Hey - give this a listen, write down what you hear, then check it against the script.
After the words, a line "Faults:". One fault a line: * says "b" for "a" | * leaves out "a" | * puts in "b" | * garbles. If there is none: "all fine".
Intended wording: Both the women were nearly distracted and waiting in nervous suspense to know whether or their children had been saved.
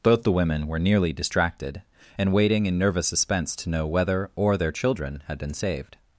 Both the women were nearly distracted and waiting in nervous suspense to know whether or their children had been saved.
Faults:
all fine